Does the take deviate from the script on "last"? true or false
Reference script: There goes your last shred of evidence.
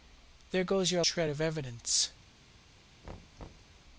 true